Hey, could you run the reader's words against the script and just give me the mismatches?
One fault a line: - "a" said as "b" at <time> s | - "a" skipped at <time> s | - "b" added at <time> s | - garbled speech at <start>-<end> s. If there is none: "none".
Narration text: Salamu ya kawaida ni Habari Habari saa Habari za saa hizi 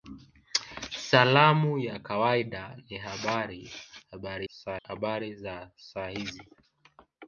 none